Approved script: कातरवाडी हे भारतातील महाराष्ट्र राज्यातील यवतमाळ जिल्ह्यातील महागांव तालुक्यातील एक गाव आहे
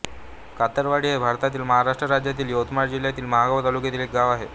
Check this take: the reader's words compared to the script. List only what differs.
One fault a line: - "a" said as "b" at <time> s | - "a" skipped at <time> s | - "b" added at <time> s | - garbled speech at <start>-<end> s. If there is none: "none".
none